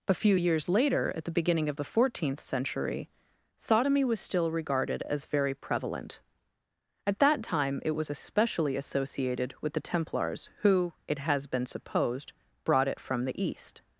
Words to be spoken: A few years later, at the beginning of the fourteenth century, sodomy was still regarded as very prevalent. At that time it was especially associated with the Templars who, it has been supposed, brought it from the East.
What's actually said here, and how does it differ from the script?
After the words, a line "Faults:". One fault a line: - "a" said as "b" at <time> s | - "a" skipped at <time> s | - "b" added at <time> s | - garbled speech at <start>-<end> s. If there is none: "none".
A few years later, at the beginning of the fourteenth century, sodomy was still regarded as very prevalent. At that time it was especially associated with the Templars who, it has been supposed, brought it from the East.
Faults:
none